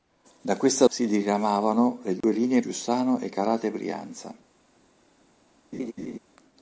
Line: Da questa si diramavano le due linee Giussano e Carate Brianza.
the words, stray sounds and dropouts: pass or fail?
fail